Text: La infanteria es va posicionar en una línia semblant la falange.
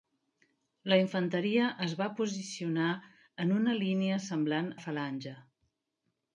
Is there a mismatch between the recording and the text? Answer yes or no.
no